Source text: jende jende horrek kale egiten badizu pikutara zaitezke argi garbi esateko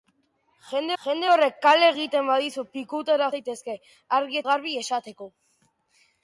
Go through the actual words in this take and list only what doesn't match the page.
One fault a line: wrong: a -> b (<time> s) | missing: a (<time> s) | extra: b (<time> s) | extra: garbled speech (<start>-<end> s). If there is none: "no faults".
no faults